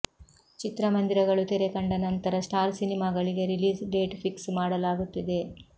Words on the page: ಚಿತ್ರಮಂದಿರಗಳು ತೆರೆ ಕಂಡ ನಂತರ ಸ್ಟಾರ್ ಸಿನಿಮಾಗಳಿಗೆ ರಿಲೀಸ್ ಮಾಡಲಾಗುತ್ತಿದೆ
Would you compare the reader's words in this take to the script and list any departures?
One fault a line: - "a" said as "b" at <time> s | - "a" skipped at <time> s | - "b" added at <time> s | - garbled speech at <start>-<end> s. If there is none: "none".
- "ಡೇಟ್ ಫಿಕ್ಸ್" added at 3.9 s